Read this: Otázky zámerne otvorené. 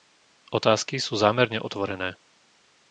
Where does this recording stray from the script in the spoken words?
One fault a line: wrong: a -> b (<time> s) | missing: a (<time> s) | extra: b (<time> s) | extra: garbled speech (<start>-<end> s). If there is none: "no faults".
extra: sú (1.0 s)